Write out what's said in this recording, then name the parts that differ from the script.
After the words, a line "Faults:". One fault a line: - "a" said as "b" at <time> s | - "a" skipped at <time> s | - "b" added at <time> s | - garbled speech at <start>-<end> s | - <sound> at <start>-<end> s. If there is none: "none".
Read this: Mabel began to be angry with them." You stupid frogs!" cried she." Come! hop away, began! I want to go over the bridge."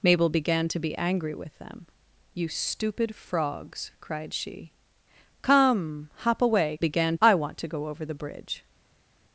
Mabel began to be angry with them." You stupid frogs!" cried she." Come! hop away, began! I want to go over the bridge."
Faults:
none